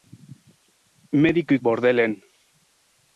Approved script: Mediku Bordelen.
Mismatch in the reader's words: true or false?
false